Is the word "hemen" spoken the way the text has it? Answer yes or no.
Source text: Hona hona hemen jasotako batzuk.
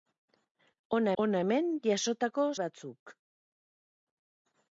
yes